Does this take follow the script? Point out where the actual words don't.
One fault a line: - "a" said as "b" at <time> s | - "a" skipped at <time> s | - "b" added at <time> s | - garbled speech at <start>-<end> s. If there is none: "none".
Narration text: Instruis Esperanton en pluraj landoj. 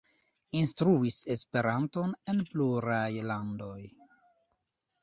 none